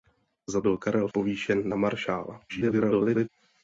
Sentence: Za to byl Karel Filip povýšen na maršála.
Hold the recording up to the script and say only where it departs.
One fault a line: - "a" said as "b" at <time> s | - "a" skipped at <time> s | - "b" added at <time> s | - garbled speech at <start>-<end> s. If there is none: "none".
- "to" skipped at 0.6 s
- "Filip" skipped at 1.1 s
- garbled speech at 2.5-3.3 s